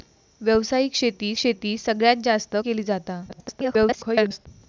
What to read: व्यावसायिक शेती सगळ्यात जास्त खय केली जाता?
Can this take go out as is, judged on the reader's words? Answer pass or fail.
fail